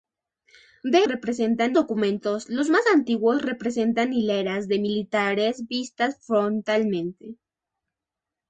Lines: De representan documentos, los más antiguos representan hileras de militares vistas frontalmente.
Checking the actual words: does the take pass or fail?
pass